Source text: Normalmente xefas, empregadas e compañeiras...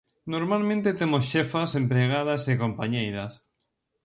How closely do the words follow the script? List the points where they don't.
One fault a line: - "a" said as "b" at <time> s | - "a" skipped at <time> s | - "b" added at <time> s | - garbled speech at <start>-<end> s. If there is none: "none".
- "temos" added at 1.0 s